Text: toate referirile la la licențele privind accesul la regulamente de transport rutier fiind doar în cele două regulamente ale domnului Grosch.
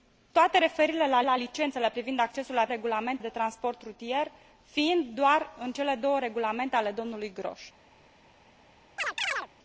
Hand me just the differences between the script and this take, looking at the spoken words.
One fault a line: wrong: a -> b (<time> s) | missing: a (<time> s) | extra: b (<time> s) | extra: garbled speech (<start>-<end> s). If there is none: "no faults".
no faults